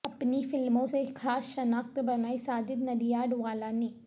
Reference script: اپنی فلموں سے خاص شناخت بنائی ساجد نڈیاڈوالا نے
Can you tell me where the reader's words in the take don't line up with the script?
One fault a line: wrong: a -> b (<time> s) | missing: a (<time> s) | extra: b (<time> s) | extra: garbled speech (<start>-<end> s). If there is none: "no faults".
no faults